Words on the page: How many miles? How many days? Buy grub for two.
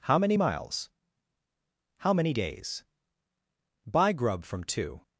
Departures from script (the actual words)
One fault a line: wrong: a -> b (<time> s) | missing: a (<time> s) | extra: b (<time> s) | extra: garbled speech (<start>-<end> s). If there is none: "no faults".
wrong: for -> from (4.4 s)